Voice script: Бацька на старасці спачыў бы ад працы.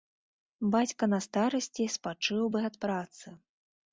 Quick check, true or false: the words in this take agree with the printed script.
true